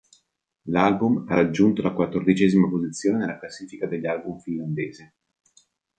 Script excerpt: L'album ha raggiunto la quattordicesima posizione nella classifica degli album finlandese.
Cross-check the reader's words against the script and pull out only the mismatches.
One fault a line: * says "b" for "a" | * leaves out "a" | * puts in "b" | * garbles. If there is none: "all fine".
all fine